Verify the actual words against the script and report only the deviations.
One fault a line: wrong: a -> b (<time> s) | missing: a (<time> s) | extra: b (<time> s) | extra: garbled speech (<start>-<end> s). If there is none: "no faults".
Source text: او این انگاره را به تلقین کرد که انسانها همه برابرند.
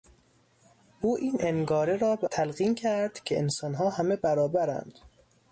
no faults